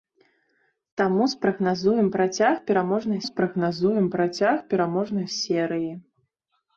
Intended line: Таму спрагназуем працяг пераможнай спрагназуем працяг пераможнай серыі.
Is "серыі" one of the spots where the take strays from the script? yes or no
no